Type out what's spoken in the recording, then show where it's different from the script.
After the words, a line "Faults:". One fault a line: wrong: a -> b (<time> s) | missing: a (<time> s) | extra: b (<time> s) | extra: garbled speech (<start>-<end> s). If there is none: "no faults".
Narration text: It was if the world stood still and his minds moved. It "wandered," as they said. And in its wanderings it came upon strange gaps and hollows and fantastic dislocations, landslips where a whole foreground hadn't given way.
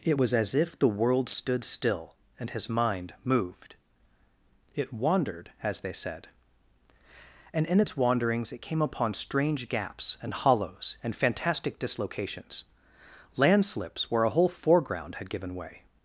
It was as if the world stood still and his mind moved. It "wandered," as they said. And in its wanderings it came upon strange gaps and hollows and fantastic dislocations, landslips where a whole foreground had given way.
Faults:
extra: as (0.3 s)
wrong: minds -> mind (2.7 s)
wrong: hadn't -> had (15.2 s)